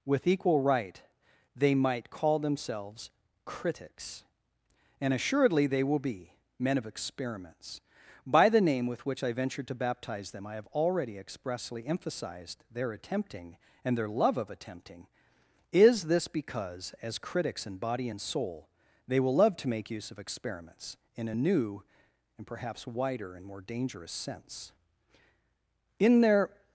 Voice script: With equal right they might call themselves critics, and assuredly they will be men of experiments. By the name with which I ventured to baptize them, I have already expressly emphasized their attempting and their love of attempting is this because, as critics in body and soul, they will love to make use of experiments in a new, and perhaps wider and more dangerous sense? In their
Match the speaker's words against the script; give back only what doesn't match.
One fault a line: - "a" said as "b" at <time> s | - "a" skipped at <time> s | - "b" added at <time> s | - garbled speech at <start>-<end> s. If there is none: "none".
none